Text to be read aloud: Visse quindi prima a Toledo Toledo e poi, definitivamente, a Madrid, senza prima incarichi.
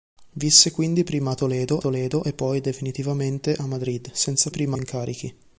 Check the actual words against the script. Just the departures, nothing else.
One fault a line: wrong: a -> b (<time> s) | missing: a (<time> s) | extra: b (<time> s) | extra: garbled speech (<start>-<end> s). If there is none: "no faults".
no faults